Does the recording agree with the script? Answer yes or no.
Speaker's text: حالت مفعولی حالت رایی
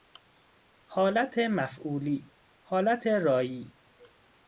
yes